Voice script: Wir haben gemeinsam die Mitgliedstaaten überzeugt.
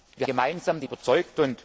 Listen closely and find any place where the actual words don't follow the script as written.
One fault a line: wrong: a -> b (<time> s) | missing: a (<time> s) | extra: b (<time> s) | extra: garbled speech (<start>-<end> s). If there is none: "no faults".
missing: haben (0.3 s)
missing: Mitgliedstaaten (0.9 s)